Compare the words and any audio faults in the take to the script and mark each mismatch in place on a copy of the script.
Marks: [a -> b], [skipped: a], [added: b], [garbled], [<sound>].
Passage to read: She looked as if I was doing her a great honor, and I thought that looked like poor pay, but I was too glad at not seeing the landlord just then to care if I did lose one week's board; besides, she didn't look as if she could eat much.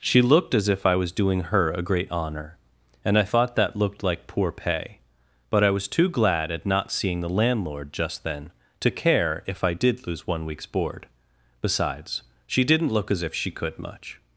She looked as if I was doing her a great honor, and I thought that looked like poor pay, but I was too glad at not seeing the landlord just then to care if I did lose one week's board; besides, she didn't look as if she could [skipped: eat] much.